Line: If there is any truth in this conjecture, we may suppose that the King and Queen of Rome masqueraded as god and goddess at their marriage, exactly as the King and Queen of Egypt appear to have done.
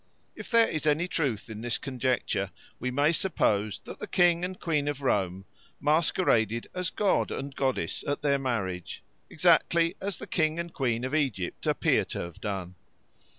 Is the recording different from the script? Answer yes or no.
no